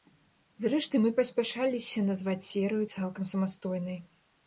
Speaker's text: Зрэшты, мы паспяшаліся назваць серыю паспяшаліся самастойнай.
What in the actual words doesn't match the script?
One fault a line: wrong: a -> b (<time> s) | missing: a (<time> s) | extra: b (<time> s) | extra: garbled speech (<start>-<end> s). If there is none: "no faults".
wrong: паспяшаліся -> цалкам (2.9 s)